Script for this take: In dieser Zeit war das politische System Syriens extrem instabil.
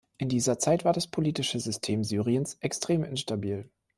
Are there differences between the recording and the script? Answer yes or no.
no